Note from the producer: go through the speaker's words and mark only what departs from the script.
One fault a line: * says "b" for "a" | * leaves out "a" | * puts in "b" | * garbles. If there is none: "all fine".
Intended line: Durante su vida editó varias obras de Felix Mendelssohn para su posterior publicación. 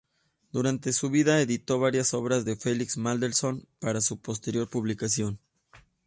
all fine